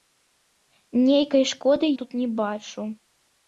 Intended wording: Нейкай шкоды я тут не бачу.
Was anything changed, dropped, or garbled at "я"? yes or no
yes